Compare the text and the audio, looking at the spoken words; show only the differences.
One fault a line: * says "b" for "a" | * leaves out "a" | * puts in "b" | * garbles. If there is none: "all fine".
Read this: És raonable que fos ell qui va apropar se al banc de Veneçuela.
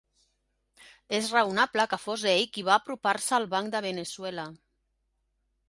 all fine